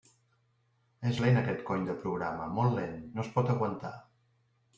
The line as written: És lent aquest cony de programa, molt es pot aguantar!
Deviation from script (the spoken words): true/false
true